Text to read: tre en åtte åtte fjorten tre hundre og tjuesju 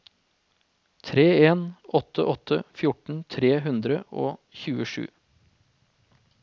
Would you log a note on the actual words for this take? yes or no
no